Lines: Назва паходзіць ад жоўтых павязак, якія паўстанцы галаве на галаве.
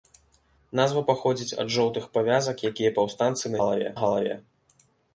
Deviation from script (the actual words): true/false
false